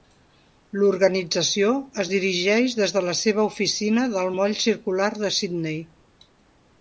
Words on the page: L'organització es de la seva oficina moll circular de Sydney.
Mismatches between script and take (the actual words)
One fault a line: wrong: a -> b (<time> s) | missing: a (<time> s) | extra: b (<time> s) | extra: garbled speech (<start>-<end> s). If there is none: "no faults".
extra: dirigeix des (2.1 s)
extra: del (4.1 s)